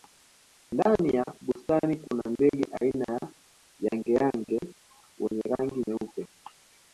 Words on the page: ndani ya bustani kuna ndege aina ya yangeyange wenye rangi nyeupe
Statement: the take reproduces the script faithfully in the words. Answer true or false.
true